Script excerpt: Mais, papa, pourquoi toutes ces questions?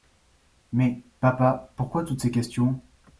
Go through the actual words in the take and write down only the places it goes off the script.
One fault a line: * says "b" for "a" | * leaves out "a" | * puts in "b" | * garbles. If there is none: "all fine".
all fine